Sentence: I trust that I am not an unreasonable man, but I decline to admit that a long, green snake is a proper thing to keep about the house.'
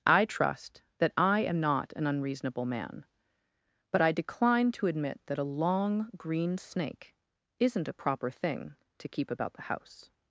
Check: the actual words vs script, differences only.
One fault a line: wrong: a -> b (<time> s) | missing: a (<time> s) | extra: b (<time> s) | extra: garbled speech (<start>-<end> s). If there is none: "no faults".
wrong: is -> isn't (7.6 s)